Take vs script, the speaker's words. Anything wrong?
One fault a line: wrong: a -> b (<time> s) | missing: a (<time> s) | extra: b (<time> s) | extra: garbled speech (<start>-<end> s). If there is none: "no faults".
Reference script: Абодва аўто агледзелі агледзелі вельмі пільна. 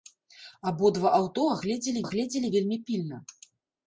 no faults